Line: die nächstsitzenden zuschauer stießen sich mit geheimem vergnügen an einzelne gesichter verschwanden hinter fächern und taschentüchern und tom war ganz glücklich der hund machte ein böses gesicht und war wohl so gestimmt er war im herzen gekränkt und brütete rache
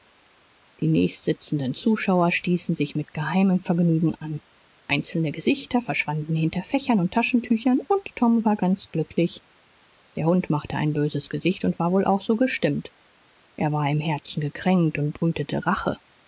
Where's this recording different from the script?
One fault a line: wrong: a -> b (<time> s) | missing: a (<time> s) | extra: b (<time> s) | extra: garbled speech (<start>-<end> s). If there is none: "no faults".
extra: auch (12.0 s)